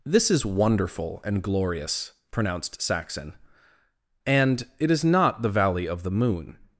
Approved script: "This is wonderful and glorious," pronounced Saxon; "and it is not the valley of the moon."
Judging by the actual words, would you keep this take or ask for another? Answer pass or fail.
pass